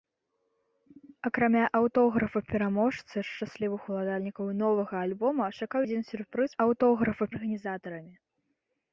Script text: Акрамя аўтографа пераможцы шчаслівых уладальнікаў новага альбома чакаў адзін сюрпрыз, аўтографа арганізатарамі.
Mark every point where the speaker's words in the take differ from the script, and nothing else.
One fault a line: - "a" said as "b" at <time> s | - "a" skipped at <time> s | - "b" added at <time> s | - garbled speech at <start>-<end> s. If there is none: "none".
none